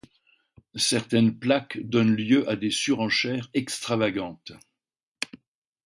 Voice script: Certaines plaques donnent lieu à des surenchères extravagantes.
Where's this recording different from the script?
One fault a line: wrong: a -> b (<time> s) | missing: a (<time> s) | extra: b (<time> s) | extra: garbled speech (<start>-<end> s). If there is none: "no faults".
no faults